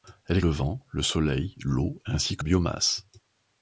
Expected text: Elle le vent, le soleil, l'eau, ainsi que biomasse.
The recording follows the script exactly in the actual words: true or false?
true